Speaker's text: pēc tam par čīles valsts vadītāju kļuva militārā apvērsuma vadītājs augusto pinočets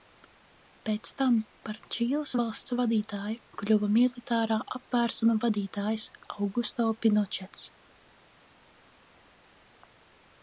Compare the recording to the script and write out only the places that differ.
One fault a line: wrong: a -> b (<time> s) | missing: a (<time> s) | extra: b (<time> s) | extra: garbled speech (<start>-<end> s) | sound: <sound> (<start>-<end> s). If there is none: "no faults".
no faults